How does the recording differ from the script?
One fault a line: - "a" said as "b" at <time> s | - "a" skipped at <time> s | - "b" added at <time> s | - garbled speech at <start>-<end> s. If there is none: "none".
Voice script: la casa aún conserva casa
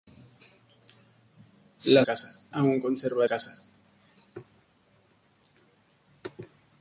none